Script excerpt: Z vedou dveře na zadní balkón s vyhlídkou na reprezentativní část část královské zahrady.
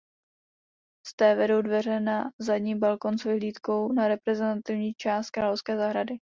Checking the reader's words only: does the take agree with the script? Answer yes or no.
no